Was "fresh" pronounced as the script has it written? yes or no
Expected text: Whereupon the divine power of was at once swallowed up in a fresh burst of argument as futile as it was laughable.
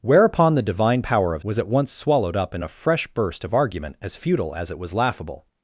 yes